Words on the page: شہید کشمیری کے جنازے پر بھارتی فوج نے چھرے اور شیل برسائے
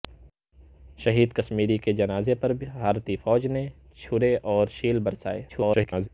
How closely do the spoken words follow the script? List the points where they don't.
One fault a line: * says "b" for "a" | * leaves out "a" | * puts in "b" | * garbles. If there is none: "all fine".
* garbles